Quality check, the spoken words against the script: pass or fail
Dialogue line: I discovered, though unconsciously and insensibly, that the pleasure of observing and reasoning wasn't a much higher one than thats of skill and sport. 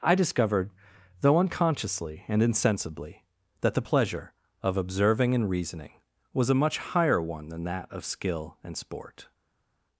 fail